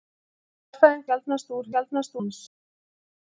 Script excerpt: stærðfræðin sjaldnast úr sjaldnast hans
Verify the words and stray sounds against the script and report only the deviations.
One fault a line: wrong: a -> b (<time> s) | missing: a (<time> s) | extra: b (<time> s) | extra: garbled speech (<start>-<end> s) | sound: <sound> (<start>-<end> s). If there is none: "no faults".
no faults